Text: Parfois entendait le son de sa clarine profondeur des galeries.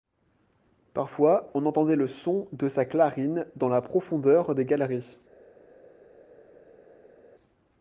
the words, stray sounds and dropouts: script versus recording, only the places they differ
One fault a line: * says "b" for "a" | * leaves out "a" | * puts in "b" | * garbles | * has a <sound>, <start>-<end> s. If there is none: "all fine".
* puts in "on"
* puts in "dans la"